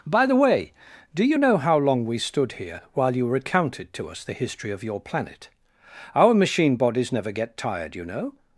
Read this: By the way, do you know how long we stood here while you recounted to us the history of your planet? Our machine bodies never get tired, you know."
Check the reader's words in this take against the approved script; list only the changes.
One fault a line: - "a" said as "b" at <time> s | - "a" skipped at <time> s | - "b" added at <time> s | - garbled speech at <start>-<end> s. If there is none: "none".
none